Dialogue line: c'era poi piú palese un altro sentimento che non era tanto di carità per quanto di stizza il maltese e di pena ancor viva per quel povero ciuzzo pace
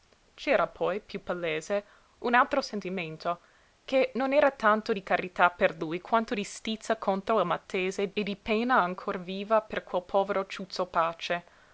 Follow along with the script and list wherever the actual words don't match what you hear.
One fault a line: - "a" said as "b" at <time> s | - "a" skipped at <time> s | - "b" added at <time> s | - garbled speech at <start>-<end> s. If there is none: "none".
- "lui" added at 5.8 s
- "contro" added at 6.9 s